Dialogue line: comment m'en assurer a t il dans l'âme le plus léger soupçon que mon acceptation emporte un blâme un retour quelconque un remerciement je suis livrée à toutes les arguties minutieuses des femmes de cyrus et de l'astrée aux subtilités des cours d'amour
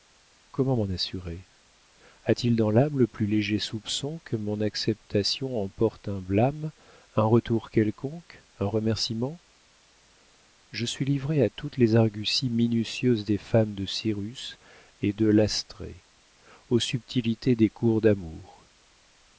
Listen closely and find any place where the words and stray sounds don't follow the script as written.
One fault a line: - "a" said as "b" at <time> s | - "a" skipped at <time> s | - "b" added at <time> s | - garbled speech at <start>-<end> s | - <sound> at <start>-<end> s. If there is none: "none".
none